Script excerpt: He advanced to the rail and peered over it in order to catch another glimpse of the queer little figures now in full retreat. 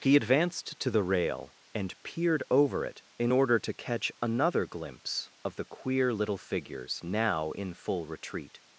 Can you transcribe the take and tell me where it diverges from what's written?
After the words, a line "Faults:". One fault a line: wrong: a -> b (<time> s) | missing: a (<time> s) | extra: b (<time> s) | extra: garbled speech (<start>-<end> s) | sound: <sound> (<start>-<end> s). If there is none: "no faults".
He advanced to the rail and peered over it in order to catch another glimpse of the queer little figures now in full retreat.
Faults:
no faults